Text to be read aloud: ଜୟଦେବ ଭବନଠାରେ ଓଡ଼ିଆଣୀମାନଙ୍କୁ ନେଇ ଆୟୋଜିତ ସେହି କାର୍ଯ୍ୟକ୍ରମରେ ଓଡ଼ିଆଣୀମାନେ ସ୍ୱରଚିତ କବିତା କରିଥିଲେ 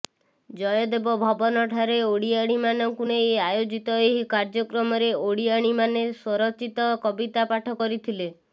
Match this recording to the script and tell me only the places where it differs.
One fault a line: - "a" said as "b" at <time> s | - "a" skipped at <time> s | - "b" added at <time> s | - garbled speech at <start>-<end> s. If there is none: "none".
- "ସେହି" said as "ଏହି" at 4.0 s
- "ପାଠ" added at 7.5 s